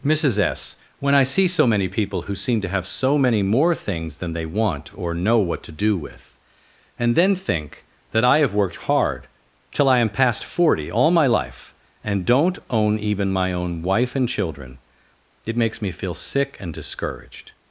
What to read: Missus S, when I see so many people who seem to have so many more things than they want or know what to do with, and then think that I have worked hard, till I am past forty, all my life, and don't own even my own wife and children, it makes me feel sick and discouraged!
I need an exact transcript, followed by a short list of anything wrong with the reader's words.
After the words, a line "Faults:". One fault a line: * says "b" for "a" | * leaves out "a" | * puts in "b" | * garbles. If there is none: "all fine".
Missus S, when I see so many people who seem to have so many more things than they want or know what to do with, and then think that I have worked hard, till I am past forty, all my life, and don't own even my own wife and children, it makes me feel sick and discouraged!
Faults:
all fine